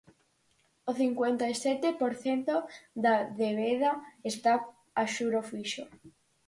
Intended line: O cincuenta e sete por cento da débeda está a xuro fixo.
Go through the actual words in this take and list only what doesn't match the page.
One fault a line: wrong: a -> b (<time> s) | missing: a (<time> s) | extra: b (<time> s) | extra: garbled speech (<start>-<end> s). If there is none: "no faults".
no faults